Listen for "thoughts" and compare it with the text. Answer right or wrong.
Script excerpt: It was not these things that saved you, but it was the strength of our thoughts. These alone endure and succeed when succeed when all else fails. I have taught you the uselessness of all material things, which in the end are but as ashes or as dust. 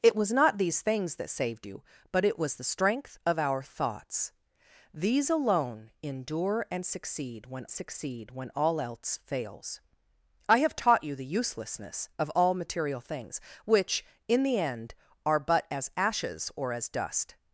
right